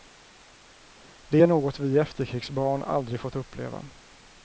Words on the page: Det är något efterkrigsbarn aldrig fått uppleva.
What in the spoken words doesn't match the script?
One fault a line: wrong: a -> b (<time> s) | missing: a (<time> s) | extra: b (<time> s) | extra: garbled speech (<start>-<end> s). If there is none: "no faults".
extra: vi (1.8 s)